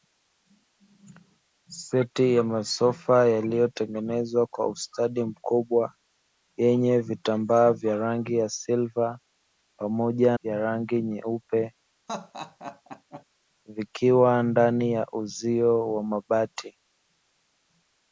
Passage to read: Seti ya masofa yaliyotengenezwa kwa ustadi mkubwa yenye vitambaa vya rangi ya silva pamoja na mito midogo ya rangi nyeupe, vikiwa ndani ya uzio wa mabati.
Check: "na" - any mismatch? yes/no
yes